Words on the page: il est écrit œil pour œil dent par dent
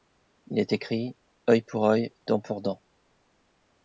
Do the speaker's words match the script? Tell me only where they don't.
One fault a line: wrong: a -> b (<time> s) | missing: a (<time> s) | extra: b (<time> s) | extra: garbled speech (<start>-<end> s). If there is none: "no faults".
wrong: par -> pour (2.4 s)